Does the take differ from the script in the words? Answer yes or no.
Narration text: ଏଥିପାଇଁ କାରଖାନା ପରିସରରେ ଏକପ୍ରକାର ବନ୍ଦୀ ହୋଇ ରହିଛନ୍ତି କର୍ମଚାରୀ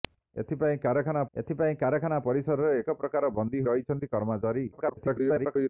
yes